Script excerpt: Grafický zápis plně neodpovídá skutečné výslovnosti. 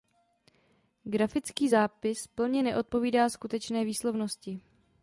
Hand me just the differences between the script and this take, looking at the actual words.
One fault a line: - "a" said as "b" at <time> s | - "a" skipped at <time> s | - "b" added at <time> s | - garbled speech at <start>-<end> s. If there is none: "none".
none